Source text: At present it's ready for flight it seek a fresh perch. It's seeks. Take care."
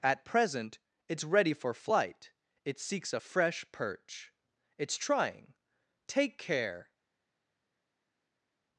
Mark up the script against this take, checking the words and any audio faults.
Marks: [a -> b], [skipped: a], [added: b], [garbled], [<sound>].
At present it's ready for flight it [seek -> seeks] a fresh perch. It's [seeks. -> trying] Take care."